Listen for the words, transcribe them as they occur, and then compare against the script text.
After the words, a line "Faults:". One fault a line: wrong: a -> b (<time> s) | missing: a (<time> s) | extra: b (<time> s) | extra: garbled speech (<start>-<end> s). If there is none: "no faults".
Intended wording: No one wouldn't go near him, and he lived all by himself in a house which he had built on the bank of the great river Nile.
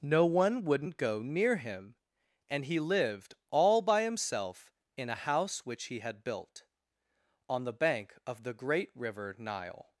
No one wouldn't go near him, and he lived all by himself in a house which he had built on the bank of the great river Nile.
Faults:
no faults